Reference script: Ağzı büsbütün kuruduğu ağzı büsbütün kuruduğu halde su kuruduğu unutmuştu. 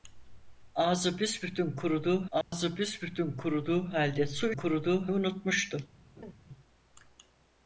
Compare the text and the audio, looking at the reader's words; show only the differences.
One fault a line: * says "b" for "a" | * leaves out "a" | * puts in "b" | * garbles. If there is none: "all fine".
all fine